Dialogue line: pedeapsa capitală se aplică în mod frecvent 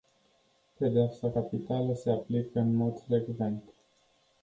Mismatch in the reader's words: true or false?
false